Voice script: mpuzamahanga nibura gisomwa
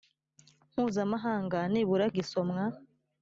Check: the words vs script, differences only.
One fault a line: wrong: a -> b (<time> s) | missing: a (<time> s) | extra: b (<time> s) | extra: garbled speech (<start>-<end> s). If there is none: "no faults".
no faults